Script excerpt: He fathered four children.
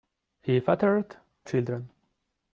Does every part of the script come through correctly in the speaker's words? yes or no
no